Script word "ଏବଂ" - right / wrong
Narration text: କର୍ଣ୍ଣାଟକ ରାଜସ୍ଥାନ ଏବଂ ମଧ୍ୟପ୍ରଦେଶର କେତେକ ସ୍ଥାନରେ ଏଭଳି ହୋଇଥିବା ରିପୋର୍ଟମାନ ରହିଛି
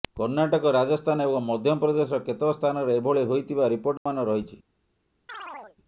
right